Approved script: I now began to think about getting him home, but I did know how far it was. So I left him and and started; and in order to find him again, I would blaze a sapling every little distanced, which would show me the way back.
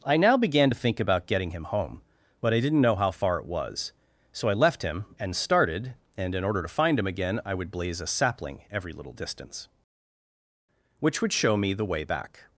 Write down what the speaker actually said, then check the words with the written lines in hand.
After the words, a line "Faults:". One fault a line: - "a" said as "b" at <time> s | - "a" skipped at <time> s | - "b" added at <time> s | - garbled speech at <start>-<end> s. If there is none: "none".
I now began to think about getting him home, but I didn't know how far it was. So I left him and started; and in order to find him again, I would blaze a sapling every little distance, which would show me the way back.
Faults:
- "did" said as "didn't" at 2.6 s
- "and" skipped at 5.3 s
- "distanced" said as "distance" at 9.1 s